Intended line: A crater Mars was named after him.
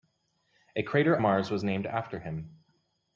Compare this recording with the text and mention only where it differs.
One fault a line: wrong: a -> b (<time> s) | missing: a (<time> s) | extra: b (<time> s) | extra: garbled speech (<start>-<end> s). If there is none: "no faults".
no faults